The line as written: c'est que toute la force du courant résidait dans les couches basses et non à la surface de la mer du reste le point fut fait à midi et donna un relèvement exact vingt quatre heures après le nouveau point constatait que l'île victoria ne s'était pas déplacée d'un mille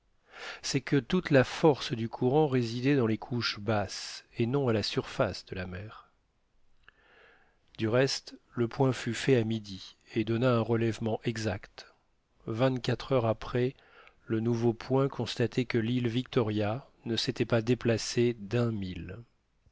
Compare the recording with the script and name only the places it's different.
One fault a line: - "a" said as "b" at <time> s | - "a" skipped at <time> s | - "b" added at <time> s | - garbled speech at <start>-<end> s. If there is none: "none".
none